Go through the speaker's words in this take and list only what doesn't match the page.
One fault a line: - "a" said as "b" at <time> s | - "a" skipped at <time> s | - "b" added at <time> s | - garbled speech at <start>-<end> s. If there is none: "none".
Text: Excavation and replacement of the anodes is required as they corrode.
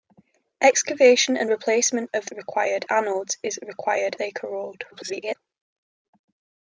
- "the" said as "required" at 2.3 s
- "as" skipped at 4.2 s
- garbled speech at 4.9-5.4 s